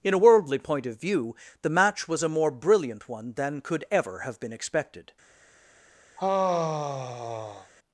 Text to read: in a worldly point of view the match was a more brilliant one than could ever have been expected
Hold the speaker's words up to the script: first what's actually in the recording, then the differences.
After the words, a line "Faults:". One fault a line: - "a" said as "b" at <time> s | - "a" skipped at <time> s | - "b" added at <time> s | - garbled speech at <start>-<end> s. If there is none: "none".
in a worldly point of view the match was a more brilliant one than could ever have been expected
Faults:
none